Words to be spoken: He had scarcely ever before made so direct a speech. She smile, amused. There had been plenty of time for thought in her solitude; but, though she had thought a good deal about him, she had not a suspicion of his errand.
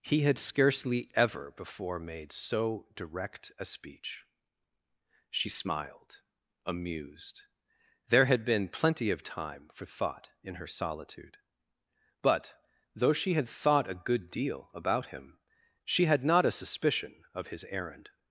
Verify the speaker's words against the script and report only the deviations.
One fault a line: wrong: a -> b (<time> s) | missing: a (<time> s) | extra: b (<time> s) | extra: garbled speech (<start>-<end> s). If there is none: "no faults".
wrong: smile -> smiled (5.5 s)